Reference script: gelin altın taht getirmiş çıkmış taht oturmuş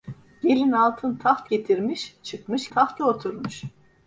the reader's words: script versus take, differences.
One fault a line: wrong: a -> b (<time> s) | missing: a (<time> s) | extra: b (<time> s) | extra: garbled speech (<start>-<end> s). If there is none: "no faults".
no faults